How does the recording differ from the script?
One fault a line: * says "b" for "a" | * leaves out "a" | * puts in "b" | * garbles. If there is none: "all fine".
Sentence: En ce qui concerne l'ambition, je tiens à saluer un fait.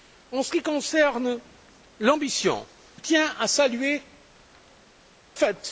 * leaves out "je"
* leaves out "un"